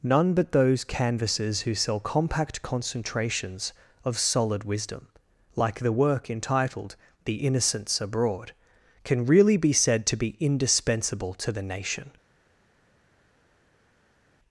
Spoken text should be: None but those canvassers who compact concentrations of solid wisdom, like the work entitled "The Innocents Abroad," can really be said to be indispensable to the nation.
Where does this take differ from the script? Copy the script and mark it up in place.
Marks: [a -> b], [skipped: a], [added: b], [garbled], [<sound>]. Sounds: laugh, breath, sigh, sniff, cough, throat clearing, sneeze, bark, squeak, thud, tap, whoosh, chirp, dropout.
None but those canvassers who [added: sell] compact concentrations of solid wisdom, like the work entitled "The Innocents Abroad," can really be said to be indispensable to the nation.